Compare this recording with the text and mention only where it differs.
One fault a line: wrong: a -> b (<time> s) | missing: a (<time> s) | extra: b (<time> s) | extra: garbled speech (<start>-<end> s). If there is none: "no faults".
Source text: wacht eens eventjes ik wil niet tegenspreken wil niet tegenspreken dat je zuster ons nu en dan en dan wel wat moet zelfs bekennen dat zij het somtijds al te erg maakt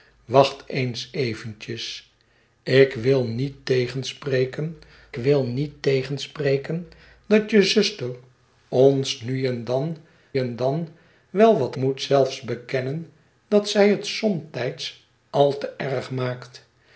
no faults